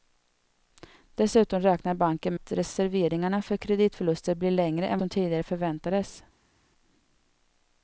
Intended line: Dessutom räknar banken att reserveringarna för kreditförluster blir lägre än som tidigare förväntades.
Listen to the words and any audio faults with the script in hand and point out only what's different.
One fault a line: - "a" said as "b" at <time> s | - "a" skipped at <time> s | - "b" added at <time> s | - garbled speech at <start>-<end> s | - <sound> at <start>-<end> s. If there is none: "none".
none